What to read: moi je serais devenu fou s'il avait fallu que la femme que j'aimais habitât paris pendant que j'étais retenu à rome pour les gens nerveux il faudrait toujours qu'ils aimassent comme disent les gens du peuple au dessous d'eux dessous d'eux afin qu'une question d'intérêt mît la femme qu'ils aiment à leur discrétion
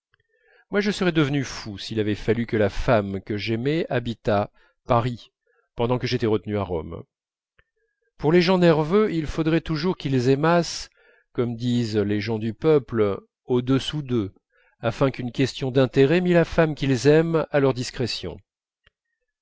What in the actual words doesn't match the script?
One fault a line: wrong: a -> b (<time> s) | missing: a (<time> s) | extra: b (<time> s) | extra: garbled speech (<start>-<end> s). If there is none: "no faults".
missing: dessous d'eux (14.3 s)